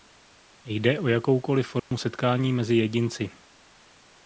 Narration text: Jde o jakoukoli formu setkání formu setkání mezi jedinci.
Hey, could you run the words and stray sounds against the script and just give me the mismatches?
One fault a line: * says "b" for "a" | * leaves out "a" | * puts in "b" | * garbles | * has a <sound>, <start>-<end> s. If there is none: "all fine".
* has a dropout, 1.8-1.9 s
* leaves out "formu setkání"